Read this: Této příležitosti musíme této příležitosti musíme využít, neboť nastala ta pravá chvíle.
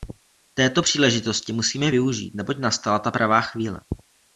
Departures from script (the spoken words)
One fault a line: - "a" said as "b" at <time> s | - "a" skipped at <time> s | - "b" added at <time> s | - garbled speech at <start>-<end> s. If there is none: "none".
- "této příležitosti musíme" skipped at 1.9 s